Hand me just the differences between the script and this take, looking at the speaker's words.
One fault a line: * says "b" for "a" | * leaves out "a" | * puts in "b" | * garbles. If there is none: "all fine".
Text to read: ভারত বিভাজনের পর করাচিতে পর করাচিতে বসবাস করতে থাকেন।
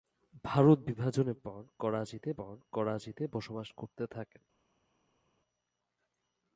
all fine